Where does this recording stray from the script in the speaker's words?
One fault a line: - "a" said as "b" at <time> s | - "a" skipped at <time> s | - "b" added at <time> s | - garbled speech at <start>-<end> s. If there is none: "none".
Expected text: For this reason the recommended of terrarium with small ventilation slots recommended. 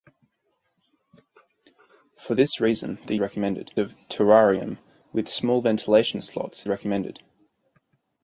none